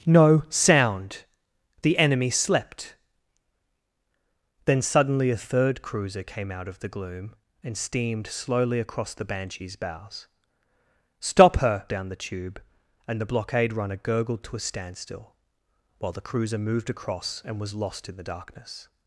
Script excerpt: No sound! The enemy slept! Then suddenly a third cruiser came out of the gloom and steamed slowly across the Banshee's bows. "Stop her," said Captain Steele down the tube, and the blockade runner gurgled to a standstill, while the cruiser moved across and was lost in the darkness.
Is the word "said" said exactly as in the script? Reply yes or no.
no